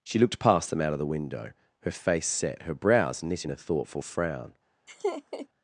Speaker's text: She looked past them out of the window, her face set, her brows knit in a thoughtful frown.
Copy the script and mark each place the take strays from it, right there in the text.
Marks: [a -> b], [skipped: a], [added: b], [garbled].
She looked past them out of the window, her face set, her brows knit in a thoughtful frown.